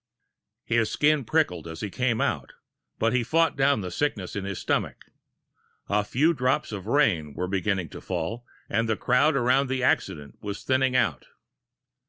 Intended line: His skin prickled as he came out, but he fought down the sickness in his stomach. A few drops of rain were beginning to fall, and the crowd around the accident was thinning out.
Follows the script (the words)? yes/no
yes